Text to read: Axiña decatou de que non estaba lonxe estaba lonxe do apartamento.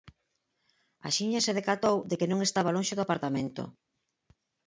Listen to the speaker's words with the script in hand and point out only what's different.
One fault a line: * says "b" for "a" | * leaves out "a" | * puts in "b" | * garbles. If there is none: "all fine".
* puts in "se"
* leaves out "estaba lonxe"